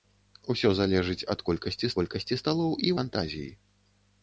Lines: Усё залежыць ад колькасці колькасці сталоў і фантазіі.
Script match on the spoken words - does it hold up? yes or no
yes